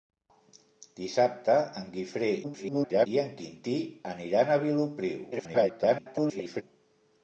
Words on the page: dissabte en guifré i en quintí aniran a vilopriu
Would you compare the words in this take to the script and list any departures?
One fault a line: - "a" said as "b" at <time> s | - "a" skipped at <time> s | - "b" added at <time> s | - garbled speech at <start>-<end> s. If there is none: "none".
- garbled speech at 2.4-3.1 s
- garbled speech at 5.3-6.6 s